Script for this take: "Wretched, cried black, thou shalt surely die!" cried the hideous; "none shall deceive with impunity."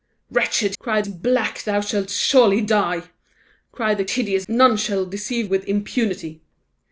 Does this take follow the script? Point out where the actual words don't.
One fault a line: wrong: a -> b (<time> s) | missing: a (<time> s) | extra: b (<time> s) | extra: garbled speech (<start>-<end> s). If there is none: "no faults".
no faults